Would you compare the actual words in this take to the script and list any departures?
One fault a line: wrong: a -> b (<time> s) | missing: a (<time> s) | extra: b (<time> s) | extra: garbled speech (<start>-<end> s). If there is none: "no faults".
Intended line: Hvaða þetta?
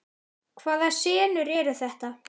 extra: senur eru (1.0 s)